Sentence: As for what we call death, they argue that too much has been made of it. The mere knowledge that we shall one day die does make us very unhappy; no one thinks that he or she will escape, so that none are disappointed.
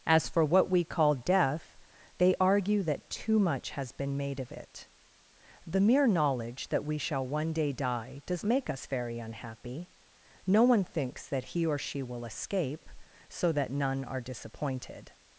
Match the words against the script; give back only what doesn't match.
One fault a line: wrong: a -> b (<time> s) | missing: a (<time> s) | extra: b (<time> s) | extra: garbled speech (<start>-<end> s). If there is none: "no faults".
no faults